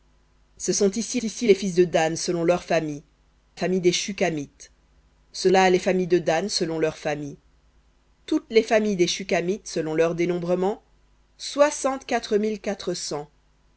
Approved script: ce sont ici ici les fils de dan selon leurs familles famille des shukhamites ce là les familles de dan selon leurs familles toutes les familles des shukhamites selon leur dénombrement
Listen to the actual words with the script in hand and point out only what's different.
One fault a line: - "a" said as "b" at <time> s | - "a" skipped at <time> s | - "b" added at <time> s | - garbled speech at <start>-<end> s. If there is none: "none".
none